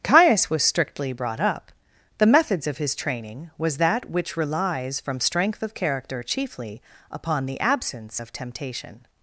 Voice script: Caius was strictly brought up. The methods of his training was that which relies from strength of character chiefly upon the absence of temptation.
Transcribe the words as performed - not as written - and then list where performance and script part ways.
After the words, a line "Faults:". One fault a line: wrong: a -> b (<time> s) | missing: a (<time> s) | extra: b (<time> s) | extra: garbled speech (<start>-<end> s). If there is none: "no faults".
Caius was strictly brought up. The methods of his training was that which relies from strength of character chiefly upon the absence of temptation.
Faults:
no faults